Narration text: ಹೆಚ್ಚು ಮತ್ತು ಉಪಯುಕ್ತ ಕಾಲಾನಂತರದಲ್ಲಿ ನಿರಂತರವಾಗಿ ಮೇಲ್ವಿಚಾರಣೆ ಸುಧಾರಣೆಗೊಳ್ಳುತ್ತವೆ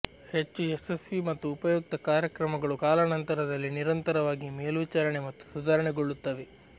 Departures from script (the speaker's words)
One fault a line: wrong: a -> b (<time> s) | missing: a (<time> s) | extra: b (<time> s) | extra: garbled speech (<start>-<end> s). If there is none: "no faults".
extra: ಯಶಸ್ವಿ (0.7 s)
extra: ಕಾರ್ಯಕ್ರಮಗಳು (2.1 s)
extra: ಮತ್ತು (5.3 s)